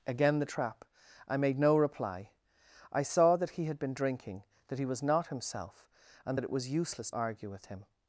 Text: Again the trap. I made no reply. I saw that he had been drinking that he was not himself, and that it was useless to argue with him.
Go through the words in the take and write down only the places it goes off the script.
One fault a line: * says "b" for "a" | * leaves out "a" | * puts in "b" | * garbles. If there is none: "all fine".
* leaves out "to"